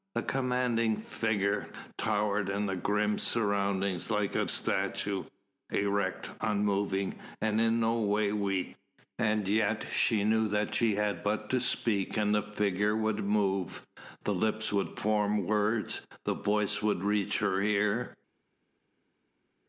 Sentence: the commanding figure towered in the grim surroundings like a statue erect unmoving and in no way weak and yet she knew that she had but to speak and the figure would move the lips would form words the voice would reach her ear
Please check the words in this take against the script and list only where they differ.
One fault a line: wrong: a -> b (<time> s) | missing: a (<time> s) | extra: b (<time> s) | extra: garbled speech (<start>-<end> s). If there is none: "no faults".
no faults